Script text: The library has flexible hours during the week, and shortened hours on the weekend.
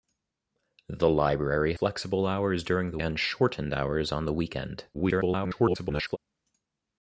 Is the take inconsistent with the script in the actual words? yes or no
yes